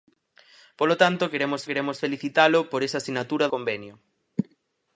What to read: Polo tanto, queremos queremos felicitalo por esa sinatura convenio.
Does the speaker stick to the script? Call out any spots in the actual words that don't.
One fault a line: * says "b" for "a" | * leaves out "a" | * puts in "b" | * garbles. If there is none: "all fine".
all fine